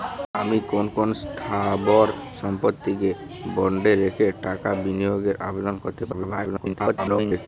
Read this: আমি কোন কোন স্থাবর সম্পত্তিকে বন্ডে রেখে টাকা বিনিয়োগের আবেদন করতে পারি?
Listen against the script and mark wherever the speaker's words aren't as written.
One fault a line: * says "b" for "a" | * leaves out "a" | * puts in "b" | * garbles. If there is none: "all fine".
* garbles